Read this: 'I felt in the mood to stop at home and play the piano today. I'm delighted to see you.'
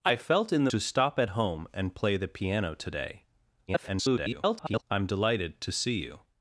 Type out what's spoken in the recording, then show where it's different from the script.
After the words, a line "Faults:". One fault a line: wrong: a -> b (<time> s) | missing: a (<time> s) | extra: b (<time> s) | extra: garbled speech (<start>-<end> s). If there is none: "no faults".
'I felt in the to stop at home and play the piano today. [garbled] I'm delighted to see you.'
Faults:
missing: mood (0.7 s)
extra: garbled speech (3.7-4.8 s)